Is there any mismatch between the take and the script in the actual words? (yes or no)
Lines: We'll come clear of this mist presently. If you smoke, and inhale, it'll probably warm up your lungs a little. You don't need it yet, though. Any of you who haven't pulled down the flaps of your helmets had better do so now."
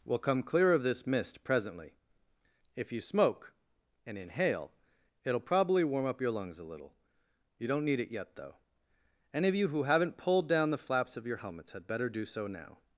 no